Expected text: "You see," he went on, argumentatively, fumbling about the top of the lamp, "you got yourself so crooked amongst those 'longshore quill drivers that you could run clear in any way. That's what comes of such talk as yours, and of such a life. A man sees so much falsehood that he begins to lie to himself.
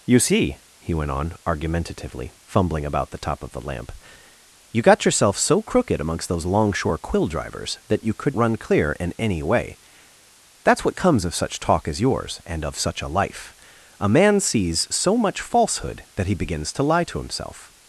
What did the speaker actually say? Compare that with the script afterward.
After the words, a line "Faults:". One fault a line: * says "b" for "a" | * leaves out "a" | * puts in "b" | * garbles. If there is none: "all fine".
"You see," he went on, argumentatively, fumbling about the top of the lamp, "you got yourself so crooked amongst those 'longshore quill drivers that you could run clear in any way. That's what comes of such talk as yours, and of such a life. A man sees so much falsehood that he begins to lie to himself.
Faults:
all fine